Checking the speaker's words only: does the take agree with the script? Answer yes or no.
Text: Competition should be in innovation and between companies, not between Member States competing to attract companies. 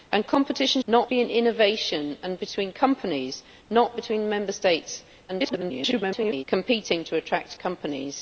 no